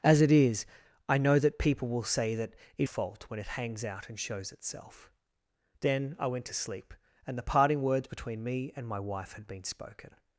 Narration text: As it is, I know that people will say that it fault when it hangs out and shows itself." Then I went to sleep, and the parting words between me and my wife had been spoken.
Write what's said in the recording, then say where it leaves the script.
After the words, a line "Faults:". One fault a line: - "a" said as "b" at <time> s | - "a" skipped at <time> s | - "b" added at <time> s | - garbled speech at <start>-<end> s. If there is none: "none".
As it is, I know that people will say that it fault when it hangs out and shows itself." Then I went to sleep, and the parting words between me and my wife had been spoken.
Faults:
none